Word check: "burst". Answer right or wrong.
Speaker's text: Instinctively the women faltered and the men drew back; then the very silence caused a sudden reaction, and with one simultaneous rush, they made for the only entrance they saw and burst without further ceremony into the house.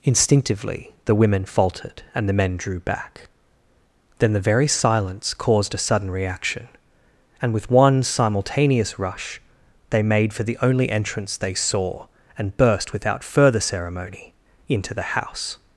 right